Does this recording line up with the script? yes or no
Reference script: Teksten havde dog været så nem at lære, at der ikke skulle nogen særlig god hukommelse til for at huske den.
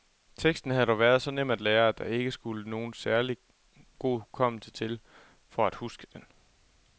yes